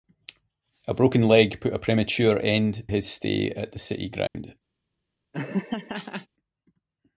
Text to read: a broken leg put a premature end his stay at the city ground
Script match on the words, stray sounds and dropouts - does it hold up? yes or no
no